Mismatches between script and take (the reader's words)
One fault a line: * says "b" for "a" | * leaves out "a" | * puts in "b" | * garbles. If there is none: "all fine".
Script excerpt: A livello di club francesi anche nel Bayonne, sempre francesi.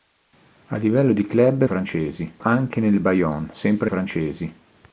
all fine